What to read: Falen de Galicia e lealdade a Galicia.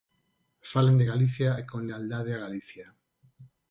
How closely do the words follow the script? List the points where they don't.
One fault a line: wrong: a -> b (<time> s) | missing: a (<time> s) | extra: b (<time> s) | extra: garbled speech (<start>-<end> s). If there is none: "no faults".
extra: con (1.7 s)